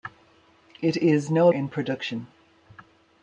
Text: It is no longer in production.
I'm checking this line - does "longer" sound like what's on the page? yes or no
no